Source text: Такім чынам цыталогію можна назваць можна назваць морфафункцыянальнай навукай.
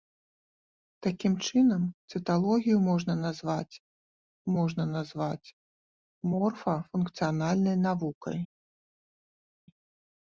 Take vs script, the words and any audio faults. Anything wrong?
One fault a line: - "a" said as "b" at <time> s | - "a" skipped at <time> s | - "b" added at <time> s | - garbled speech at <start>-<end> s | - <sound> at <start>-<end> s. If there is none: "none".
none